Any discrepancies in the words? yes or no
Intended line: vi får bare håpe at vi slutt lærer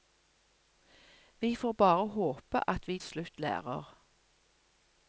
no